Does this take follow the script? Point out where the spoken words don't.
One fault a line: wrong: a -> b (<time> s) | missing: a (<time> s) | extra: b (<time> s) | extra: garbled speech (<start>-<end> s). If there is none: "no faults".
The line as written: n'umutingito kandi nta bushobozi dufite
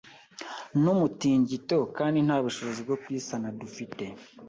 extra: bwo kuyisana (2.9 s)